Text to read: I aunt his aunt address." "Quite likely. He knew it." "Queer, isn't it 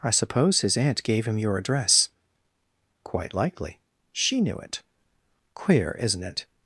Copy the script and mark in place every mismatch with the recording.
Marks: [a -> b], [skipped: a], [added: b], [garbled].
I [aunt -> suppose] his aunt [added: gave him your] address." "Quite likely. [He -> She] knew it." "Queer, isn't it